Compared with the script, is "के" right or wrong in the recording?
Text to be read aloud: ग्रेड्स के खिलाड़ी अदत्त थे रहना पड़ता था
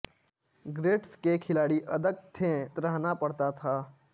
right